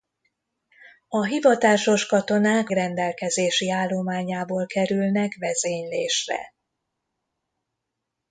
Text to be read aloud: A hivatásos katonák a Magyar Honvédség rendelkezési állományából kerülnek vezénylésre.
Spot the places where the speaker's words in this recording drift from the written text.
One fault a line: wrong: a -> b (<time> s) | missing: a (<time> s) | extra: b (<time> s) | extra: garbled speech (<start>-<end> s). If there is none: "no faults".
missing: a Magyar Honvédség (2.7 s)